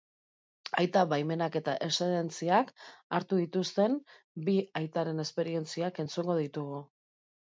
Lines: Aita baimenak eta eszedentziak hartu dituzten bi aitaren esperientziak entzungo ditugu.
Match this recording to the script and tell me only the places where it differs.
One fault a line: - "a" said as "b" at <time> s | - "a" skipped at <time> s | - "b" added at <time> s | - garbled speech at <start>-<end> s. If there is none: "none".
none